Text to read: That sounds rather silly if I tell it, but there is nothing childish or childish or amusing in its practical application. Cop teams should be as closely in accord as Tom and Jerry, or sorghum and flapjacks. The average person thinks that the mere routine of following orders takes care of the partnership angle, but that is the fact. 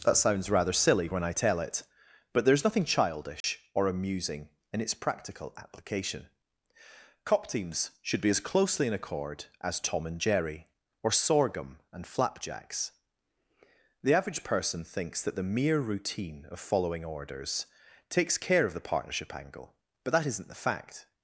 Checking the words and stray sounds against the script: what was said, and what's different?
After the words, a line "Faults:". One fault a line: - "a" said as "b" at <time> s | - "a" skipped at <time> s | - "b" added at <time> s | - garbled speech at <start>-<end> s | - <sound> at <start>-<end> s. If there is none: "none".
That sounds rather silly when I tell it, but there is nothing childish or amusing in its practical application. Cop teams should be as closely in accord as Tom and Jerry, or sorghum and flapjacks. The average person thinks that the mere routine of following orders takes care of the partnership angle, but that isn't the fact.
Faults:
- "if" said as "when" at 1.1 s
- dropout at 3.4-3.4 s
- "childish or" skipped at 3.9 s
- "is" said as "isn't" at 20.3 s